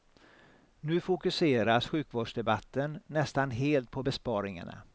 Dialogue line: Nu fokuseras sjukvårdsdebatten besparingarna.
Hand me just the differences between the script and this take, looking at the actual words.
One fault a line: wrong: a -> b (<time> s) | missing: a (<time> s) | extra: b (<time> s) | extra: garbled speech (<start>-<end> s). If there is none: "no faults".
extra: nästan helt på (3.1 s)